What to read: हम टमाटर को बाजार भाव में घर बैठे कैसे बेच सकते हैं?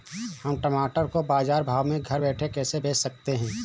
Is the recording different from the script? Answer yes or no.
no